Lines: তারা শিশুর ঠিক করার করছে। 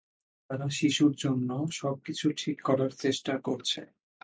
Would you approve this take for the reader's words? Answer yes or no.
no